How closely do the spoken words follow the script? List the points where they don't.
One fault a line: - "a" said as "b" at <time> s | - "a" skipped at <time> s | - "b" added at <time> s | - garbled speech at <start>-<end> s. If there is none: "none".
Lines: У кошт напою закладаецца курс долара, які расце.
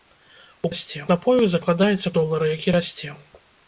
- "кошт" said as "расце" at 0.7 s
- "курс" skipped at 2.1 s